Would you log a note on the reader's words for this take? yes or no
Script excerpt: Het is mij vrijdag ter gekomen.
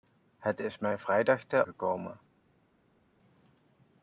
no